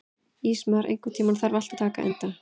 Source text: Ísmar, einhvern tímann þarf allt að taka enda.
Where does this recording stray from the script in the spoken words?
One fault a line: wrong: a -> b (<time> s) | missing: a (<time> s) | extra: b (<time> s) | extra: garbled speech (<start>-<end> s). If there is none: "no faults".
no faults